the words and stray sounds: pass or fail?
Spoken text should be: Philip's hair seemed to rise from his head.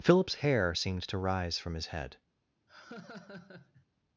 fail